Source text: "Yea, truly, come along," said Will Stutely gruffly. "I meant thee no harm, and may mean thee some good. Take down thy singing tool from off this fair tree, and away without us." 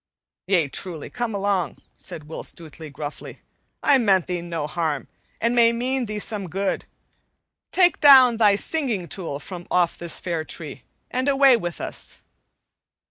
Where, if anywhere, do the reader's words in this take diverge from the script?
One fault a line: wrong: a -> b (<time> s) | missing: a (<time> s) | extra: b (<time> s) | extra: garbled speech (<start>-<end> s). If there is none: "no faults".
wrong: without -> with (11.6 s)